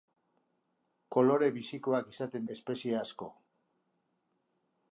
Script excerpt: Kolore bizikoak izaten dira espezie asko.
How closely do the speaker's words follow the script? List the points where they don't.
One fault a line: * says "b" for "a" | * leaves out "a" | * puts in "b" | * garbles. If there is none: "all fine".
* leaves out "dira"